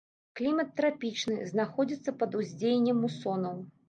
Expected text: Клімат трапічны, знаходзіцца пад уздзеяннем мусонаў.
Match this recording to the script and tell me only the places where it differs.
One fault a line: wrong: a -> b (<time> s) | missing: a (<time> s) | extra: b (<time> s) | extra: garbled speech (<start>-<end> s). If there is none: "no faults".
no faults